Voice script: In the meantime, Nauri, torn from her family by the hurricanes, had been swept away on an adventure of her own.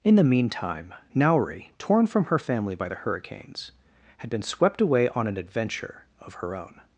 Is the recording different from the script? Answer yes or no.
no